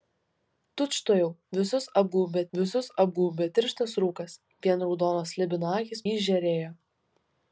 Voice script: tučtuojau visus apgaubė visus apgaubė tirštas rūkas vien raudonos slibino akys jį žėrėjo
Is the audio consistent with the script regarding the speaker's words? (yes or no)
yes